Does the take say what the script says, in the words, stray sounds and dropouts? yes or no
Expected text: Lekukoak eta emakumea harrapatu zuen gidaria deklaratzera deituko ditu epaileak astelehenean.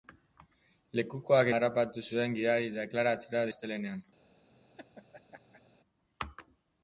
no